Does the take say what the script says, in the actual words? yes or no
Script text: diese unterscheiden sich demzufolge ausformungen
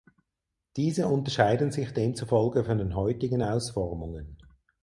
no